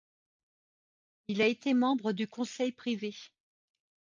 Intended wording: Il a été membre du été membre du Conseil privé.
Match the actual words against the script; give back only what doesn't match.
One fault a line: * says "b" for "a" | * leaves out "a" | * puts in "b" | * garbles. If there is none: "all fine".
* leaves out "été membre du"